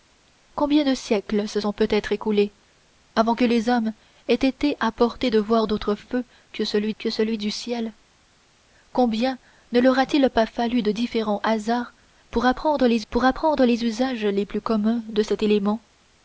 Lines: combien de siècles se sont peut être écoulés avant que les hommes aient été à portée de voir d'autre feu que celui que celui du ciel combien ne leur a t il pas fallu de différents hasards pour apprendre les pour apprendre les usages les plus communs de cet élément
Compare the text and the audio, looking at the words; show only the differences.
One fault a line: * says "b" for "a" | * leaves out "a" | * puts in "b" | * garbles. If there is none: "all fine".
all fine